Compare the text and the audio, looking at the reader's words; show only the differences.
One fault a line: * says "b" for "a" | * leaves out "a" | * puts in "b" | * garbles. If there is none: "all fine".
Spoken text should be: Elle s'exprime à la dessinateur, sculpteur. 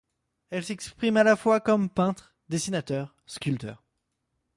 * puts in "fois comme peintre"